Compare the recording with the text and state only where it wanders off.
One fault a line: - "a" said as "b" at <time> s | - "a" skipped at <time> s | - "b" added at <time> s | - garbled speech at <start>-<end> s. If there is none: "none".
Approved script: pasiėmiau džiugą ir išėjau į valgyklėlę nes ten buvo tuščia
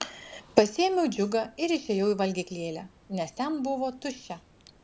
none